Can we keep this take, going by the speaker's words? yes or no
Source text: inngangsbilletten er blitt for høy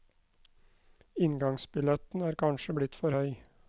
no